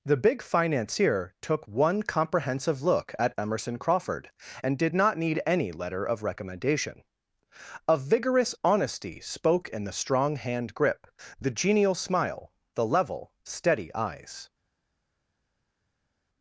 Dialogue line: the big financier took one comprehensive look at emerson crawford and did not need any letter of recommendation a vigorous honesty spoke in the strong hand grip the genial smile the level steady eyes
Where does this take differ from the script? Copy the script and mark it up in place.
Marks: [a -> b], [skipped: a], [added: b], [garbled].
the big financier took one comprehensive look at emerson crawford and did not need any letter of recommendation a vigorous honesty spoke in the strong hand grip the genial smile the level steady eyes